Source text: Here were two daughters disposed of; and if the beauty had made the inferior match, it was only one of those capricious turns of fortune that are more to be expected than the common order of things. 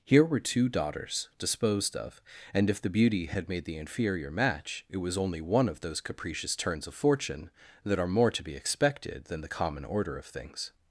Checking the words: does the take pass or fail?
pass